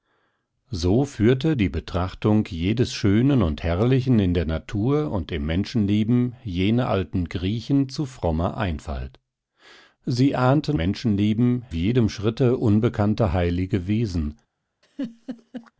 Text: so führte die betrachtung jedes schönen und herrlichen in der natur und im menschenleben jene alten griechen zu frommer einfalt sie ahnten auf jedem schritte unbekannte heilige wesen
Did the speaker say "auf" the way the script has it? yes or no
no